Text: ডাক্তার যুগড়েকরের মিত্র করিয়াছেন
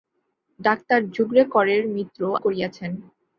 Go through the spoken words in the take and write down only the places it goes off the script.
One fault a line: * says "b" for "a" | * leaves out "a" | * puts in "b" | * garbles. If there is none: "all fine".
all fine